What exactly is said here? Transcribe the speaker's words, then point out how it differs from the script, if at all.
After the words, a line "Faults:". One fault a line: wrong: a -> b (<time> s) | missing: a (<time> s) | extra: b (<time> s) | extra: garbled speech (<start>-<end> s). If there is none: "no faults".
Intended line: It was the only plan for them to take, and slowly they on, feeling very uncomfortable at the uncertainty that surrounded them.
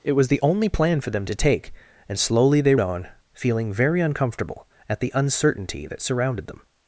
It was the only plan for them to take, and slowly they on, feeling very uncomfortable at the uncertainty that surrounded them.
Faults:
no faults